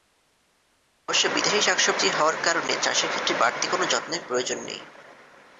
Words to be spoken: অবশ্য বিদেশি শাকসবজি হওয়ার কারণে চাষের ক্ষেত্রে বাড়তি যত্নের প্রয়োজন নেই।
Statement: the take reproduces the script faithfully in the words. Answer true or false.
false